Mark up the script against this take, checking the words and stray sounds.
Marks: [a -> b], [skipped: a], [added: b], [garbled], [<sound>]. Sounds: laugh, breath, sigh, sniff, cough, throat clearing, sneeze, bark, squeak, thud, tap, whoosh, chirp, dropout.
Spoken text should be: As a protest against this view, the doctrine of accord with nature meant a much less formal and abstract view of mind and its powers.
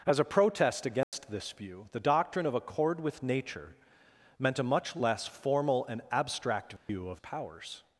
As a protest against [dropout] this view, the doctrine of accord with nature meant a much less formal and abstract view [dropout] of [skipped: mind and its] powers.